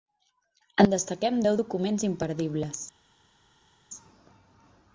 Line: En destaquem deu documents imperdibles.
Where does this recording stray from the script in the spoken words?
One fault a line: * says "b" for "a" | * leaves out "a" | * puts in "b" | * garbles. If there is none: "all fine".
all fine